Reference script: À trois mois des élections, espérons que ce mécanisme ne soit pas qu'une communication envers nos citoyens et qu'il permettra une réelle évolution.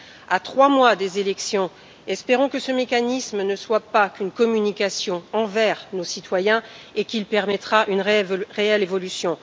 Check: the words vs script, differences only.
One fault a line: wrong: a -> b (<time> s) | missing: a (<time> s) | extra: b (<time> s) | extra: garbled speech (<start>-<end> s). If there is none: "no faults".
no faults